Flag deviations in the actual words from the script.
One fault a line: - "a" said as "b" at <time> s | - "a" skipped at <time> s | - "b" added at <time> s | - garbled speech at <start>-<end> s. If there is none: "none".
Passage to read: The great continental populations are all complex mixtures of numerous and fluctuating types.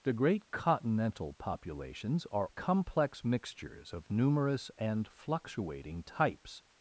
- "all" skipped at 2.5 s